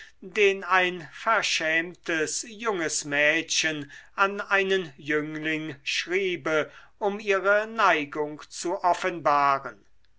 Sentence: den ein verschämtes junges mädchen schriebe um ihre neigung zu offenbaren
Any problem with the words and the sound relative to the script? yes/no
yes